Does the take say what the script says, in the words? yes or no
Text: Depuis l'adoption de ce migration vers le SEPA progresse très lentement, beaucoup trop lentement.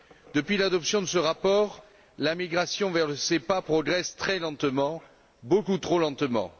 no